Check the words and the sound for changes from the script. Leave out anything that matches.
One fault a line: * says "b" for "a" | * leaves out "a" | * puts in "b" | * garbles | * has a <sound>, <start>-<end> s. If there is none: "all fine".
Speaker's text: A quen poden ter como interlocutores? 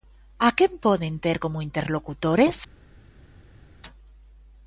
all fine